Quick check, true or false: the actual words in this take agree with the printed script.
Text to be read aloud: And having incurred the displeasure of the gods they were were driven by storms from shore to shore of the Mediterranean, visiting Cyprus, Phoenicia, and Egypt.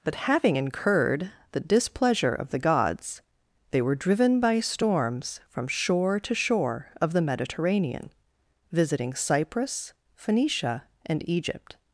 false